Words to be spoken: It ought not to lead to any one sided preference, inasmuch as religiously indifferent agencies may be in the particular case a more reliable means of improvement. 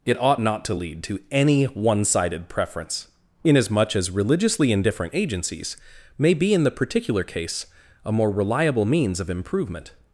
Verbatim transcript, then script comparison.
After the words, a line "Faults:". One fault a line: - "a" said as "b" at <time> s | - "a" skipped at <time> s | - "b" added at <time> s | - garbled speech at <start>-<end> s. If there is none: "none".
It ought not to lead to any one sided preference, inasmuch as religiously indifferent agencies may be in the particular case a more reliable means of improvement.
Faults:
none